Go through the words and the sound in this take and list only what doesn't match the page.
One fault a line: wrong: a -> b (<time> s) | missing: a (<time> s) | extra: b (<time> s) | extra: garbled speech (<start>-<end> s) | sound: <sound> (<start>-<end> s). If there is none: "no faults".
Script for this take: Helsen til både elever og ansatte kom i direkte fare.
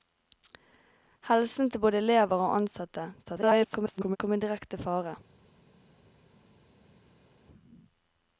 extra: garbled speech (3.3-4.2 s)